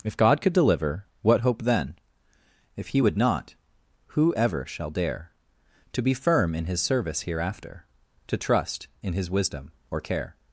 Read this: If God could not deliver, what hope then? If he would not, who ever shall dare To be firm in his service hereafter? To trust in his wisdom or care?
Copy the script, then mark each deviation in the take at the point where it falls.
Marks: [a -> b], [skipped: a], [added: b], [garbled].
If God could [skipped: not] deliver, what hope then? If he would not, who ever shall dare To be firm in his service hereafter? To trust in his wisdom or care?